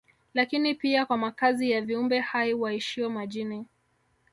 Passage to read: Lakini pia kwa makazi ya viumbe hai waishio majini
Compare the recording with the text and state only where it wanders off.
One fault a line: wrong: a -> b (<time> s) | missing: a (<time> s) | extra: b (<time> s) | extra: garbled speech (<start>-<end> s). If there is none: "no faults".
no faults